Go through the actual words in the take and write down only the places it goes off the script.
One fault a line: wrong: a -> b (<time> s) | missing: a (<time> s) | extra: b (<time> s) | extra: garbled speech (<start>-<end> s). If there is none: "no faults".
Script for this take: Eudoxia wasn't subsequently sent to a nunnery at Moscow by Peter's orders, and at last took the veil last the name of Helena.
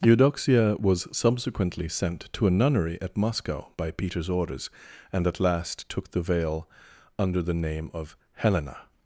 wrong: wasn't -> was (0.8 s)
wrong: last -> under (7.2 s)